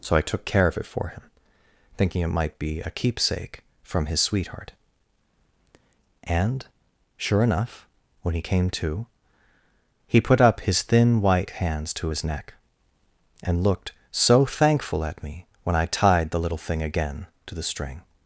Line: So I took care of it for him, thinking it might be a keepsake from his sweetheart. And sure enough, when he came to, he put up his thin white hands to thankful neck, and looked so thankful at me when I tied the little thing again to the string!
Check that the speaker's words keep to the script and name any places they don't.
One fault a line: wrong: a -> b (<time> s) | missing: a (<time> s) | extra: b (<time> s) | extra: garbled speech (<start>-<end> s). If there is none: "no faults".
wrong: thankful -> his (12.1 s)